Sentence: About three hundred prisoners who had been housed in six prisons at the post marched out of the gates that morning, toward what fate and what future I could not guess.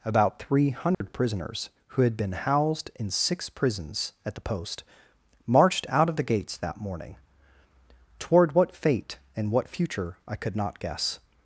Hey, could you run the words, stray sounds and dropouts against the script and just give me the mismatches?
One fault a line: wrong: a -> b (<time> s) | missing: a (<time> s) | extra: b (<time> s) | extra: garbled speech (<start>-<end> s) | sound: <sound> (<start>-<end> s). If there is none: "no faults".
sound: dropout (0.9-1.0 s)